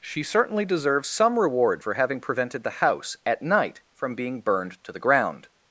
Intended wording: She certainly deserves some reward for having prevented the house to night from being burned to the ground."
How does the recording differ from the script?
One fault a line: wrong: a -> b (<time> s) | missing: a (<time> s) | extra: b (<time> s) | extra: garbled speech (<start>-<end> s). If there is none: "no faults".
wrong: to -> at (3.2 s)